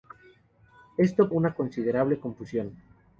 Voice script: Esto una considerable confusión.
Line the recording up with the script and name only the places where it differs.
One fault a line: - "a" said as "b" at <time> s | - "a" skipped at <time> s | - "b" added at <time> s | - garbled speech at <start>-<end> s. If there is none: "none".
none